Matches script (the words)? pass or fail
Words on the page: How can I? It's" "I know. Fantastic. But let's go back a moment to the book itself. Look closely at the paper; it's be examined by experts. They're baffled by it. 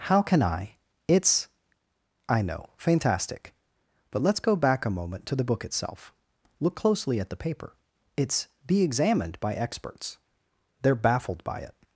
pass